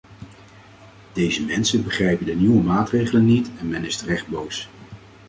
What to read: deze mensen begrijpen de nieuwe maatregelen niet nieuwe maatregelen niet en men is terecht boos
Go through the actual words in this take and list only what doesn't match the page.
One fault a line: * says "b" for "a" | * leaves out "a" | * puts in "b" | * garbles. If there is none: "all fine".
* leaves out "nieuwe maatregelen niet"